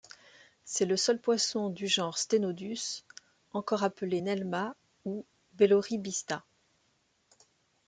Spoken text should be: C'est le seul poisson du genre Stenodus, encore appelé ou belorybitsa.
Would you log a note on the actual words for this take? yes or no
yes